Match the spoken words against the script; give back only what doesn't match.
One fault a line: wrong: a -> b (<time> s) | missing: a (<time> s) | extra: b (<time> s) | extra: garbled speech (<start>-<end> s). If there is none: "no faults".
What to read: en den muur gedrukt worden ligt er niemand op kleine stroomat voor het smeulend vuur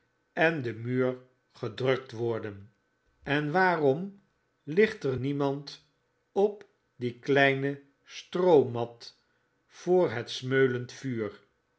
extra: en waarom (3.2 s)
extra: die (7.0 s)